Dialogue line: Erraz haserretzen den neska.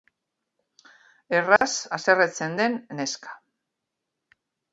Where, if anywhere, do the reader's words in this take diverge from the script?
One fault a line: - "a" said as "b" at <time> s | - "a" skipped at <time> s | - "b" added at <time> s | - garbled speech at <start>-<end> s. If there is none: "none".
none